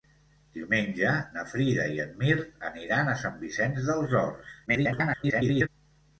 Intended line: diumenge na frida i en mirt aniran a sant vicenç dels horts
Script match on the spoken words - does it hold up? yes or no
no